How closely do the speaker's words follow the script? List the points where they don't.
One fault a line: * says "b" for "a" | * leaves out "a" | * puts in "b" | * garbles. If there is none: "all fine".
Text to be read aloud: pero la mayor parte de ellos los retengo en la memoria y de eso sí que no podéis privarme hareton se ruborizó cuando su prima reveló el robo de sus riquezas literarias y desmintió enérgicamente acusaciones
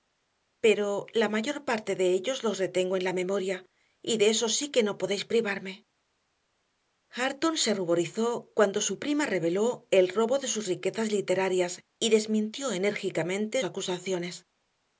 all fine